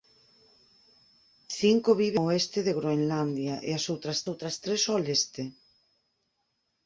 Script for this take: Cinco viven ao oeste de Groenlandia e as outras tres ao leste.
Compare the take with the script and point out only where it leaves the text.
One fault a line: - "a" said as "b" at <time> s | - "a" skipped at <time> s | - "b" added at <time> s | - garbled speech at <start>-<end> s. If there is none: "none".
- "outras" added at 4.3 s